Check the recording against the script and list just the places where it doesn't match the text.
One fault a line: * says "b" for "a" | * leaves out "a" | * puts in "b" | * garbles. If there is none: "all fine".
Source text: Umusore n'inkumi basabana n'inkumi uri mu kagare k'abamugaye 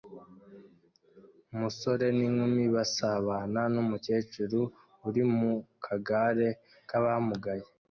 * says "numukecuru" for "n'inkumi"